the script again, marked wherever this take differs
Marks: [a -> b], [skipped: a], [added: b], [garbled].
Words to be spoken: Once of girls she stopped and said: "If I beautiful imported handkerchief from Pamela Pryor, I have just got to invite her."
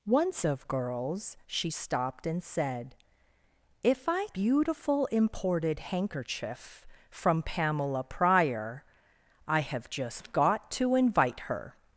Once of girls she stopped and said: "If I beautiful imported handkerchief from Pamela Pryor, I have just got to invite her."